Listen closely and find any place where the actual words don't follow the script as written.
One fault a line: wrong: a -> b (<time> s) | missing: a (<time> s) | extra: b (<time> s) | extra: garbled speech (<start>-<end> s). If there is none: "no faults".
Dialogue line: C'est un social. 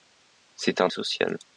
no faults